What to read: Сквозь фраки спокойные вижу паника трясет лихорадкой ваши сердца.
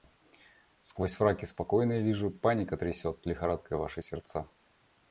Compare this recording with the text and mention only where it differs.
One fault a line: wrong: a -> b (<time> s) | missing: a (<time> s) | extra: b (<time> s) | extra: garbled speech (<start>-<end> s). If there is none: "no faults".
no faults